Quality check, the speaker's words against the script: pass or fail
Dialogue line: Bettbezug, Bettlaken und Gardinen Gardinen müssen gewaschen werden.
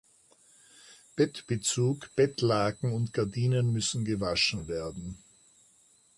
fail